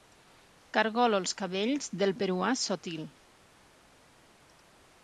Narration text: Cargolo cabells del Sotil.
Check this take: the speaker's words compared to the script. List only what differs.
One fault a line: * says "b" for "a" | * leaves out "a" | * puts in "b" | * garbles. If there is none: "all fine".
* puts in "els"
* puts in "peruà"